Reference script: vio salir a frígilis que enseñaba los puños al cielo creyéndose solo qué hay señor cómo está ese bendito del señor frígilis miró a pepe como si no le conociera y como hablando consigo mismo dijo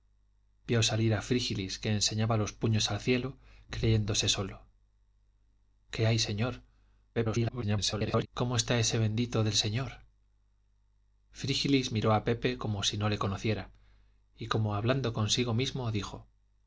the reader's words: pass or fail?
fail